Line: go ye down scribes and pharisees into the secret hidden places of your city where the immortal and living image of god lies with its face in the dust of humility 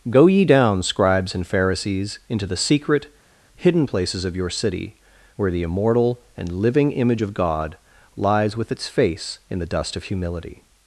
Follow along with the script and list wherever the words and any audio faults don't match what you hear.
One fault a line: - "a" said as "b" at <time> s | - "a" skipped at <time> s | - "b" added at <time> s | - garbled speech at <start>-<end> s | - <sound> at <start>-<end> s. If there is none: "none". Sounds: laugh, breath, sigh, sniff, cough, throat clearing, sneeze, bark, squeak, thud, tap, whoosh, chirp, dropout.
none